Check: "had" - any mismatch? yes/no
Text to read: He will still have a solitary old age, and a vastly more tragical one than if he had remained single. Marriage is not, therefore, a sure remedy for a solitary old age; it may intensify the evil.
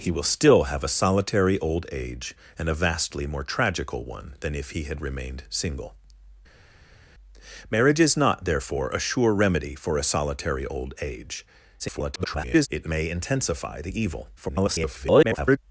no